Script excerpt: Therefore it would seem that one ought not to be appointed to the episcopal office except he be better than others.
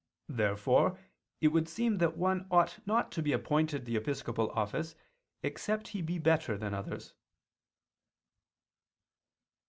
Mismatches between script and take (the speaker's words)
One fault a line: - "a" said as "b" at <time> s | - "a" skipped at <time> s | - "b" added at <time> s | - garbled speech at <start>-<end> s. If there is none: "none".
- "to" skipped at 3.9 s